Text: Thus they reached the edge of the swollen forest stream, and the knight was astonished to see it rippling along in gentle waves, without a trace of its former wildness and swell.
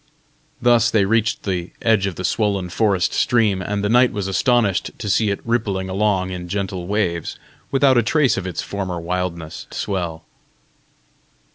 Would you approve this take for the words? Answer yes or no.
no